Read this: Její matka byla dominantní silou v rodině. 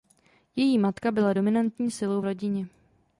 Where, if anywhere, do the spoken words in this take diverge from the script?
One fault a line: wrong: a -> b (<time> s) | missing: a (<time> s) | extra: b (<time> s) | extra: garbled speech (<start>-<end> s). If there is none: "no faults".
no faults